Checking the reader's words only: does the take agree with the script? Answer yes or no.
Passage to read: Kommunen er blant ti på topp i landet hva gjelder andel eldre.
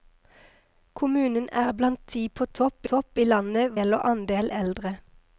no